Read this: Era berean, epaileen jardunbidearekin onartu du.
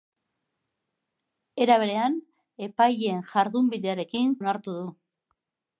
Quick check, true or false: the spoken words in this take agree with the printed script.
true